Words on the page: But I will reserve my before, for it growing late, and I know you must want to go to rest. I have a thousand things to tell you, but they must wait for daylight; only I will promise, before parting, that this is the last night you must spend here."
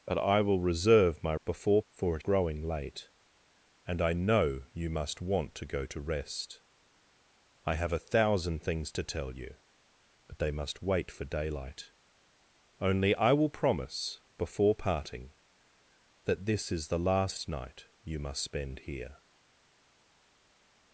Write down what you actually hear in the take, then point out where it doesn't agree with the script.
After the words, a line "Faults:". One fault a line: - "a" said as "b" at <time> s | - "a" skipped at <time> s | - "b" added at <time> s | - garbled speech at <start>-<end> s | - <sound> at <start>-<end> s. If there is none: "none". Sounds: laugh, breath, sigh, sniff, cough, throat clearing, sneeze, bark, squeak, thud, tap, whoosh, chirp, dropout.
But I will reserve my before, for it growing late, and I know you must want to go to rest. I have a thousand things to tell you, but they must wait for daylight; only I will promise, before parting, that this is the last night you must spend here."
Faults:
none